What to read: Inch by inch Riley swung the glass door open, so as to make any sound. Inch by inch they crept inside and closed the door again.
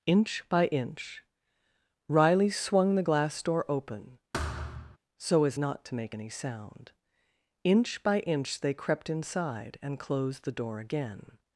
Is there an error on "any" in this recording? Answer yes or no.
no